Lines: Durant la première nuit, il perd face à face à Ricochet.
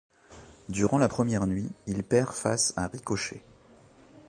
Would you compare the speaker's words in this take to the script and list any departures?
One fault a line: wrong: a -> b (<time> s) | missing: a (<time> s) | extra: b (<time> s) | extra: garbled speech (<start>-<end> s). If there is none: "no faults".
missing: face à (2.9 s)